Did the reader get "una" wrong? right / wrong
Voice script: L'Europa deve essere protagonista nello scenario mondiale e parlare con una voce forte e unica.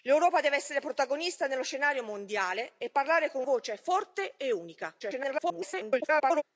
wrong